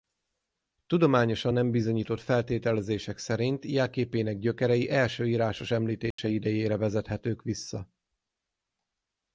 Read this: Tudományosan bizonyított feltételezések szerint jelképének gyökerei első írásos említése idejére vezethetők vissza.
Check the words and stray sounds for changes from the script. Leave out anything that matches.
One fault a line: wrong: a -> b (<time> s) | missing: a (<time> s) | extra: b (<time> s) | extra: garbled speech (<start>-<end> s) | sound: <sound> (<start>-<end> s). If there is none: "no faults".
extra: nem (1.5 s)
sound: dropout (6.1-6.2 s)